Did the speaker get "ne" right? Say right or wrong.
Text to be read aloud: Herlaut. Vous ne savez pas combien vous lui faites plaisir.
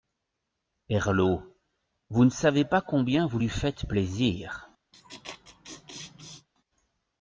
right